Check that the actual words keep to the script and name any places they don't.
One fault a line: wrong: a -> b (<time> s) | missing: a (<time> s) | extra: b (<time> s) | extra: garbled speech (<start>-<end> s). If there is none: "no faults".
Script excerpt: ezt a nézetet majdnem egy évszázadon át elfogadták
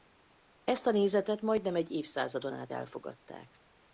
no faults